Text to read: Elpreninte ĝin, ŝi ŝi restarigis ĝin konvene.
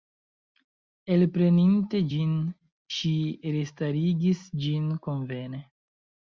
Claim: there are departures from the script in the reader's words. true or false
true